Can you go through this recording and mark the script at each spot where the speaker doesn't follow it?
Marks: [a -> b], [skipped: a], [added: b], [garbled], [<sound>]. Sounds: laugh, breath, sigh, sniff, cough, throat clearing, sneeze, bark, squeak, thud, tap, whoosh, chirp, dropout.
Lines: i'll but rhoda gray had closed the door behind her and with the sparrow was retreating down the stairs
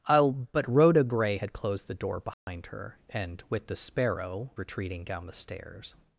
i'll but rhoda gray had closed the door behind [dropout] her and with the sparrow [skipped: was] retreating down the stairs